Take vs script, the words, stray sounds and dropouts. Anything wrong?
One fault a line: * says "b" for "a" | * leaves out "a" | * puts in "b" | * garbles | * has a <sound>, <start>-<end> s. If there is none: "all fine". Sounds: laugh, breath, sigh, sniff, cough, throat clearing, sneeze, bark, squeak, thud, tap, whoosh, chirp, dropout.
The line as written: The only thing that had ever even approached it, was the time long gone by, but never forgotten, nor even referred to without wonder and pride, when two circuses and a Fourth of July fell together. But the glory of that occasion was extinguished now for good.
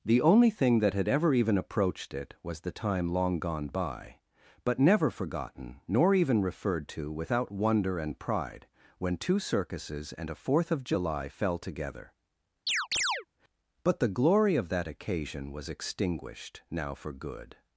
* has a chirp, 12.7-13.3 s